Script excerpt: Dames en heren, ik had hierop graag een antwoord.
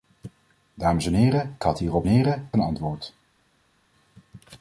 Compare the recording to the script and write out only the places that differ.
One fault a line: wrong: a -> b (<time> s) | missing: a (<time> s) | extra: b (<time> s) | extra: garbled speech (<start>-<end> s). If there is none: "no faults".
missing: ik (1.6 s)
wrong: graag -> heren (2.1 s)